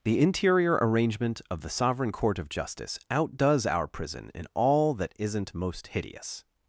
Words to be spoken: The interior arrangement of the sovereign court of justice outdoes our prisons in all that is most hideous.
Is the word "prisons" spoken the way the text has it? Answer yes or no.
no